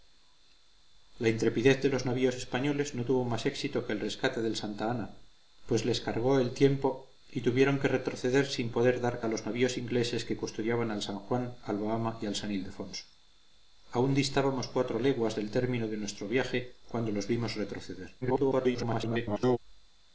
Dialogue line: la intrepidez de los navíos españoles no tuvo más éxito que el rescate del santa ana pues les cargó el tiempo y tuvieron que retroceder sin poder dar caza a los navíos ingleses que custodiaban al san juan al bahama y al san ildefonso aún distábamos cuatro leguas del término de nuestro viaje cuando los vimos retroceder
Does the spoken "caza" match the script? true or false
false